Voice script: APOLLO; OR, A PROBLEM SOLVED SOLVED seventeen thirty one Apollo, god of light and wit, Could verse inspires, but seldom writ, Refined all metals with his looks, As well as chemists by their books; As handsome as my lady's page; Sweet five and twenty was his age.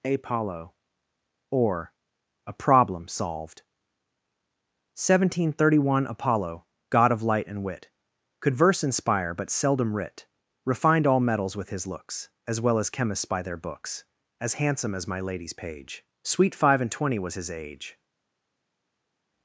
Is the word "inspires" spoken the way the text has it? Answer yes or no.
no